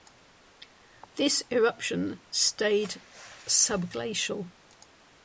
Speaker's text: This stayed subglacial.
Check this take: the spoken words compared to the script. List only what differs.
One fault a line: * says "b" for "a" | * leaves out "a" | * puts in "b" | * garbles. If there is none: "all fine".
* puts in "eruption"